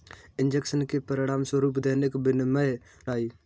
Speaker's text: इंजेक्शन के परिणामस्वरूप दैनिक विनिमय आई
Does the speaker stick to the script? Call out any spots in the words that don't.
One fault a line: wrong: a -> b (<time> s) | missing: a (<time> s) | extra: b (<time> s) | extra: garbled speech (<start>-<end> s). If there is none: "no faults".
no faults